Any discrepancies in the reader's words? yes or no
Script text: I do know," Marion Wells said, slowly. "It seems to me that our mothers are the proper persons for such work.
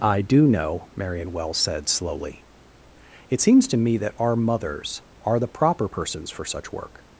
no